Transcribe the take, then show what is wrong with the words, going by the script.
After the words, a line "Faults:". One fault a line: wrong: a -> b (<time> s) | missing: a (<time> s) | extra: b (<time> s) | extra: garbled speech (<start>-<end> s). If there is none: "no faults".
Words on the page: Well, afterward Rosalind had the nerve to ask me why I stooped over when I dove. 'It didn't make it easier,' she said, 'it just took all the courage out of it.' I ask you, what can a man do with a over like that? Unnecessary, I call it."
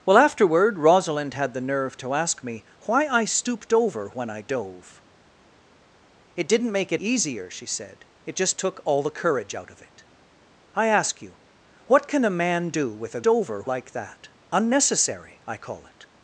Well, afterward Rosalind had the nerve to ask me why I stooped over when I dove. 'It didn't make it easier,' she said, 'it just took all the courage out of it.' I ask you, what can a man do with a over like that? Unnecessary, I call it."
Faults:
no faults